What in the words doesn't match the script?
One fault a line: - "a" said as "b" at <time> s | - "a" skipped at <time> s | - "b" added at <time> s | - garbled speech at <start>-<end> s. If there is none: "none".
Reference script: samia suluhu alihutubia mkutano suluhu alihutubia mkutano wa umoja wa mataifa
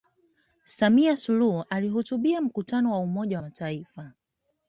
- "suluhu alihutubia mkutano" skipped at 2.9 s